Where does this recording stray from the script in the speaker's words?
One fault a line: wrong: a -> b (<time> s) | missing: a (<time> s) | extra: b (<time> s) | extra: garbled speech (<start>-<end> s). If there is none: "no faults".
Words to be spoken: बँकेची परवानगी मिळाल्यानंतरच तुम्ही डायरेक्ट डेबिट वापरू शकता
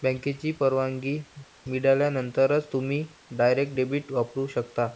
no faults